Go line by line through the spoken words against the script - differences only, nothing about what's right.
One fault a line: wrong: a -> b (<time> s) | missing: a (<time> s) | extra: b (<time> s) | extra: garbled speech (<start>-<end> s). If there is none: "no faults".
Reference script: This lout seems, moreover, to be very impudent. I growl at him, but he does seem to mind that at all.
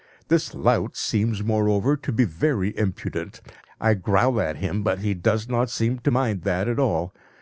extra: not (5.5 s)